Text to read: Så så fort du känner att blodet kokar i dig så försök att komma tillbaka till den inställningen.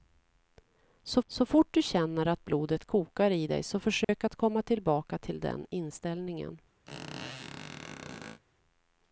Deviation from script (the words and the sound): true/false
true